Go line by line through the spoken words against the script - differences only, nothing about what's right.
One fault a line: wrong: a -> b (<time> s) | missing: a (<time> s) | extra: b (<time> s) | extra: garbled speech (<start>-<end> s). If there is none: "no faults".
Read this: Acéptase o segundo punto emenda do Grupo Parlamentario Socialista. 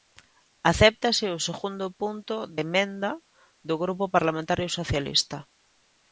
no faults